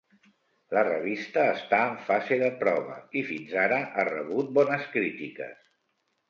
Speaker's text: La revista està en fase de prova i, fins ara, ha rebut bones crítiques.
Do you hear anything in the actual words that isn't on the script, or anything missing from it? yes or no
no